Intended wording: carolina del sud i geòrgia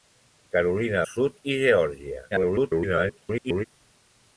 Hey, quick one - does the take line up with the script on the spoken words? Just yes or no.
no